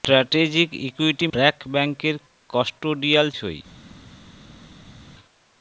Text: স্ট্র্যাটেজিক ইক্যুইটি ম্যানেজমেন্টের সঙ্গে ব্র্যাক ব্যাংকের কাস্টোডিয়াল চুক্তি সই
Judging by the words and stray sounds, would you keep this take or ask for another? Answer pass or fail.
fail